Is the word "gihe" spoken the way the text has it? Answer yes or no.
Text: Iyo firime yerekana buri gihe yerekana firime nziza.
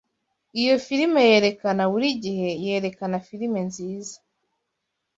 yes